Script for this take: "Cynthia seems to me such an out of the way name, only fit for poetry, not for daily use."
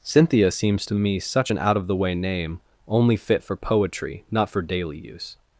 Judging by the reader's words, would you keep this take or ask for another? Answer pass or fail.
pass